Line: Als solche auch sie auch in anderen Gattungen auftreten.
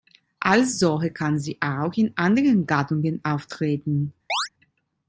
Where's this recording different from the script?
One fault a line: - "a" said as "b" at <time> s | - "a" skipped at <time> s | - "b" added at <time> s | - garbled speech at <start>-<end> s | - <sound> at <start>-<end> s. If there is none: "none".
- "auch" said as "kann" at 1.1 s
- chirp at 4.3-4.5 s